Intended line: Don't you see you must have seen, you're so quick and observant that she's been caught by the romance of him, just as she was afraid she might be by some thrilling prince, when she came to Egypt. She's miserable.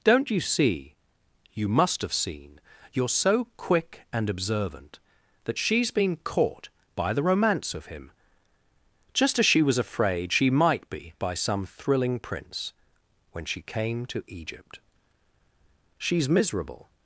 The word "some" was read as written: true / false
true